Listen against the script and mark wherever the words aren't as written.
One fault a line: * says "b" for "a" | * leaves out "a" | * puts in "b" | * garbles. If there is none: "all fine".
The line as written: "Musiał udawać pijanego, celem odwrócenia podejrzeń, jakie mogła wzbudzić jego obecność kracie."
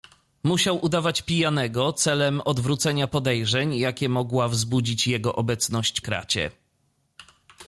all fine